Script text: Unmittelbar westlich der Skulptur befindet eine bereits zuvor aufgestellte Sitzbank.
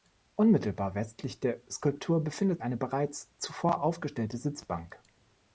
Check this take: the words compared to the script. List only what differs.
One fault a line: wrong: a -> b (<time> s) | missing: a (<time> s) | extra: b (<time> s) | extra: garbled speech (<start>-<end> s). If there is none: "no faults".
no faults